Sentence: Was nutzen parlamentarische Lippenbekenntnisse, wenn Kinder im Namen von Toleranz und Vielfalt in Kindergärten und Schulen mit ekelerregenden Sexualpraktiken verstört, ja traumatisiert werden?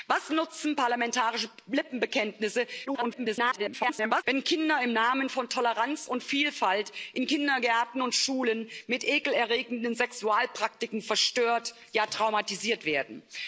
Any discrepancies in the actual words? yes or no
yes